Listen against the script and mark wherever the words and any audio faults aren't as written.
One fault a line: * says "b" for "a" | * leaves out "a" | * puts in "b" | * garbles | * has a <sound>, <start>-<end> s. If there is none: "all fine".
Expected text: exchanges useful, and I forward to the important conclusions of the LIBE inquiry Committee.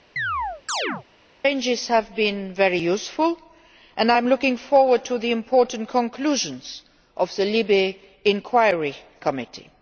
* has a chirp, 0.2-1.0 s
* puts in "have been very"
* puts in "am looking"